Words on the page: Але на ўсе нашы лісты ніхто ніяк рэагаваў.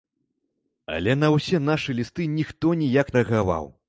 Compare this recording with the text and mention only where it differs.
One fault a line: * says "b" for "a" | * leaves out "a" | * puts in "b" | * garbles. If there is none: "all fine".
all fine